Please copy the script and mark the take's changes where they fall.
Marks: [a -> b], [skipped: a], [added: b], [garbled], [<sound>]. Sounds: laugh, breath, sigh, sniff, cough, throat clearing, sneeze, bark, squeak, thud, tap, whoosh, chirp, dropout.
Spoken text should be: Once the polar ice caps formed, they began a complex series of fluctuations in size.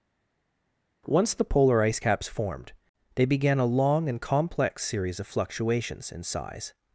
Once the polar ice caps formed, they began a [added: long and] complex series of fluctuations in size.